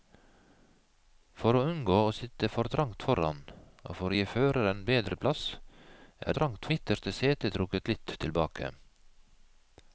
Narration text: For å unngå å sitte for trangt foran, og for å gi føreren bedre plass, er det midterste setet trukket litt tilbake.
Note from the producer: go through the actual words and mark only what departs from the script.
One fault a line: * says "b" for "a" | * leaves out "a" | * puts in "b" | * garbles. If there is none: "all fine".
* says "trangt" for "det"